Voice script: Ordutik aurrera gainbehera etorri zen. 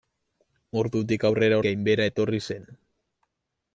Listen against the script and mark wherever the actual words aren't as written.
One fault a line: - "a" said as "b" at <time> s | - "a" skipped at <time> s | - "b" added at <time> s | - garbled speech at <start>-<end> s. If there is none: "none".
none